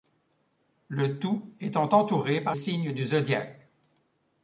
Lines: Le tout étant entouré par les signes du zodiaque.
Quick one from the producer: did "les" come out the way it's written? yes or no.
no